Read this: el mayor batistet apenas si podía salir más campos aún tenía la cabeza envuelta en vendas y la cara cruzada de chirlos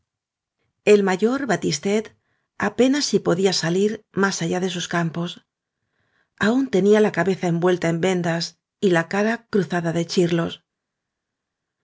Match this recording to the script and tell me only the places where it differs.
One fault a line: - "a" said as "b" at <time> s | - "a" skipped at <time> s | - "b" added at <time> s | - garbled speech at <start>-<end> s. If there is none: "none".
- "allá de sus" added at 4.4 s